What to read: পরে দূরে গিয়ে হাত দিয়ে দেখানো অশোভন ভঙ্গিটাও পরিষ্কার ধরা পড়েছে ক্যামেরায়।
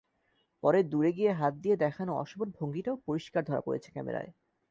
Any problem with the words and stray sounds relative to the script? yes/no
no